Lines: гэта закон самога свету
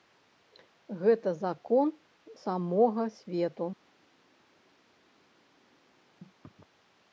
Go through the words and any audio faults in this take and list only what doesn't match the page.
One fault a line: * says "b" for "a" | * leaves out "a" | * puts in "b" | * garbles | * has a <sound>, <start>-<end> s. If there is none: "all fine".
all fine